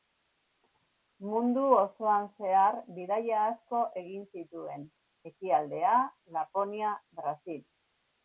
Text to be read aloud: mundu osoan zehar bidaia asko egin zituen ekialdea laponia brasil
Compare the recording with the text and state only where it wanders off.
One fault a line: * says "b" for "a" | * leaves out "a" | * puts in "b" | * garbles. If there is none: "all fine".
all fine